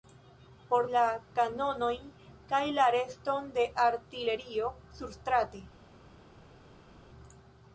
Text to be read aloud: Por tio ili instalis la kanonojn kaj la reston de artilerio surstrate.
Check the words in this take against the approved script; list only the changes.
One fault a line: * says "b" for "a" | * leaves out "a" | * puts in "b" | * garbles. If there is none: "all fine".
* leaves out "tio ili instalis"